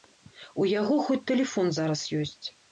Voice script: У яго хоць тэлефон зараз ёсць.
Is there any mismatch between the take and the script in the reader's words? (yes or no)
no